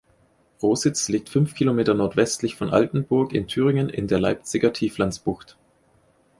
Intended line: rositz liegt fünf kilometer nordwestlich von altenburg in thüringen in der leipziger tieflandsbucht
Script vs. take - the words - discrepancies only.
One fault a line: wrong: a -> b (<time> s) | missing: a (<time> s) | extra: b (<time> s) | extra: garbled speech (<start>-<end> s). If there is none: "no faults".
no faults